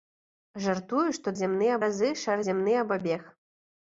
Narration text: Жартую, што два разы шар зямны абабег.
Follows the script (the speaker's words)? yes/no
no